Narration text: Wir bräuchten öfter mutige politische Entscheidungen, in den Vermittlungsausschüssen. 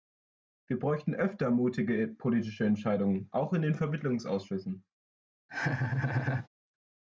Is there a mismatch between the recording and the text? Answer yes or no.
yes